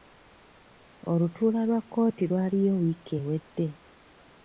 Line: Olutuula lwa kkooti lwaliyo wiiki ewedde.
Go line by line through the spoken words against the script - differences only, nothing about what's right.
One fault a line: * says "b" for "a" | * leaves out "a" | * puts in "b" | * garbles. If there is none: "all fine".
all fine